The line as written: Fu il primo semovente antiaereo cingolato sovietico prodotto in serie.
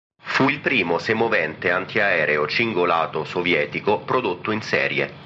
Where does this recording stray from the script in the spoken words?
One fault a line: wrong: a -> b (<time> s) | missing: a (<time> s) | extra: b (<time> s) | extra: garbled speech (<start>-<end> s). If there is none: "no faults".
no faults